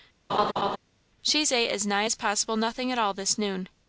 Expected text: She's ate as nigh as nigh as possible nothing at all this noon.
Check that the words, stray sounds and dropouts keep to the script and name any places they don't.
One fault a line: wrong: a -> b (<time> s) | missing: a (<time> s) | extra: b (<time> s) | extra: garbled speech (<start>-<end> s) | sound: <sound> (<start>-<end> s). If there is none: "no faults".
sound: laugh (0.3-0.8 s)
missing: nigh as (2.1 s)